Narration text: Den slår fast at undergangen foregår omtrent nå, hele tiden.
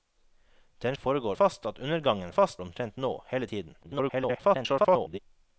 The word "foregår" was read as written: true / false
false